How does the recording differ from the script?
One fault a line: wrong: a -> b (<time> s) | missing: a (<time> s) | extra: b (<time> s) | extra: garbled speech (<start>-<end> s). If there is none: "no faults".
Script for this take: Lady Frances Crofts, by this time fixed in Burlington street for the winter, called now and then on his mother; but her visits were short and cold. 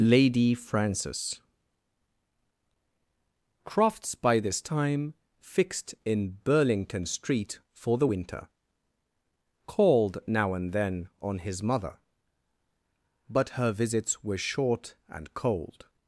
no faults